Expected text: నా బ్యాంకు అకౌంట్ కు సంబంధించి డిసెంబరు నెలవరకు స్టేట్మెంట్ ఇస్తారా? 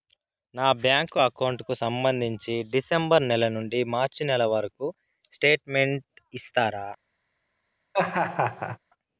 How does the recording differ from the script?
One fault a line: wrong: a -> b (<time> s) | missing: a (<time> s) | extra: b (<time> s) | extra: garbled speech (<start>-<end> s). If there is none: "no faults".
extra: నెల నుండి మార్చి (3.2 s)